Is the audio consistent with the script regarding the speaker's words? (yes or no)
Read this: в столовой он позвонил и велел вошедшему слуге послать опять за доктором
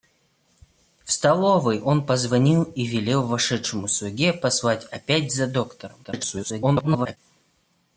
no